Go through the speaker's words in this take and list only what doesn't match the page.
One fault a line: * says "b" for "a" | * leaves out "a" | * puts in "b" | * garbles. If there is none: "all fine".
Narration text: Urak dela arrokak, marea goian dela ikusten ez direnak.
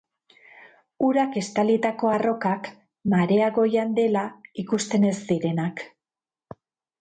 * says "estalitako" for "dela"